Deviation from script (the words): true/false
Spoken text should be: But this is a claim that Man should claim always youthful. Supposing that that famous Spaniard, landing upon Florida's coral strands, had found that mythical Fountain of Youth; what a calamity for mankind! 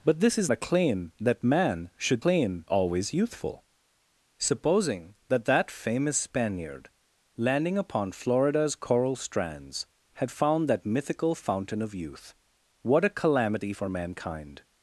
false